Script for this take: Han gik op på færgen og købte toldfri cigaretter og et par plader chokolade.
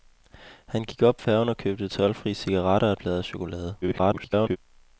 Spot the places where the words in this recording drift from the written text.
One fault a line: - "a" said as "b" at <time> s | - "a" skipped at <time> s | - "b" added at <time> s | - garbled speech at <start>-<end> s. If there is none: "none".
- "på" skipped at 1.2 s
- "par" skipped at 3.0 s
- garbled speech at 3.8-4.6 s